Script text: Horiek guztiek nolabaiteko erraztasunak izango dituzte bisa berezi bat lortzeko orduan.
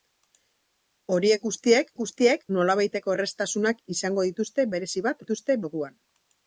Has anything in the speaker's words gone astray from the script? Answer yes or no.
yes